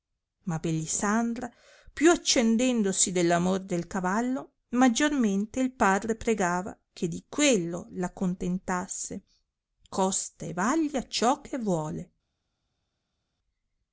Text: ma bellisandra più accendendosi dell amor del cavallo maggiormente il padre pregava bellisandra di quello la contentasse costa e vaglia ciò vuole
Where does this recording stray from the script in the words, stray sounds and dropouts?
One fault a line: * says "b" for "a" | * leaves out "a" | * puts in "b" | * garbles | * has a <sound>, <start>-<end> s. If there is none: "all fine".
* says "che" for "bellisandra"
* puts in "che"